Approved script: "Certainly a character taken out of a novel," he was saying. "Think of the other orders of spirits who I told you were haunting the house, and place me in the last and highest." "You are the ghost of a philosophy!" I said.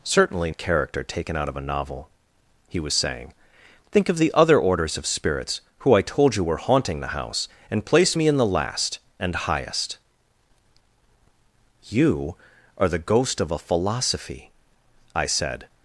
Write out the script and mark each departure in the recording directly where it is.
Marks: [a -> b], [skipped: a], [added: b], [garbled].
"Certainly a character taken out of a novel," he was saying. "Think of the other orders of spirits who I told you were haunting the house, and place me in the last and highest." "You are the ghost of a philosophy!" I said.